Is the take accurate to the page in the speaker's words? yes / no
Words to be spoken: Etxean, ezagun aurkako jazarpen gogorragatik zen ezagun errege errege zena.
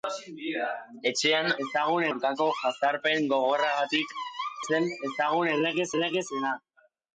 yes